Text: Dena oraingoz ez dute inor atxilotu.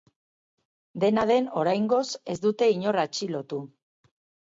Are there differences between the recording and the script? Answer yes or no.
yes